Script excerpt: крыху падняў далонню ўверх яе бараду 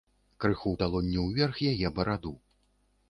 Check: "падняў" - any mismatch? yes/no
yes